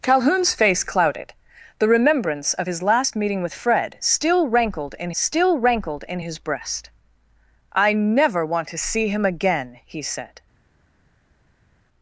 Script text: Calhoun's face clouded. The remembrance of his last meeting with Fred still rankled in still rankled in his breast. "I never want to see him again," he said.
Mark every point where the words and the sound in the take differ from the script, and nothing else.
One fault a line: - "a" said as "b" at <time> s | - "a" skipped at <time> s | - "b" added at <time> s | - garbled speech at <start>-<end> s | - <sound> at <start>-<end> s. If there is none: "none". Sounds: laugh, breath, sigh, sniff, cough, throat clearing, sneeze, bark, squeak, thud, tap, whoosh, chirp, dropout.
none